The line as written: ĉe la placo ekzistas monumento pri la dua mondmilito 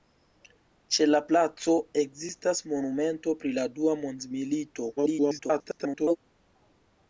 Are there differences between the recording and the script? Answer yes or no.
yes